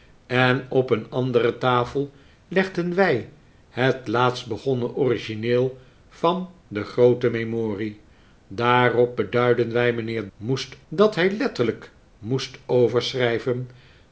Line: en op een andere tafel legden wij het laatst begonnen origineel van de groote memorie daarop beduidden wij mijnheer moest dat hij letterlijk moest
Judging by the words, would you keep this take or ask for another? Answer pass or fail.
pass